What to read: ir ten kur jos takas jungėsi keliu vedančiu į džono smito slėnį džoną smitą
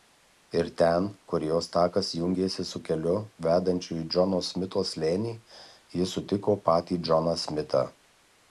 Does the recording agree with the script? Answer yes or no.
no